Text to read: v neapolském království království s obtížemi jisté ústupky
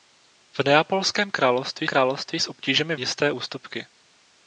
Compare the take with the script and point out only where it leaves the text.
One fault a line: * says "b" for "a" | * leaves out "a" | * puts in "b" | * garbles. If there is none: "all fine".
all fine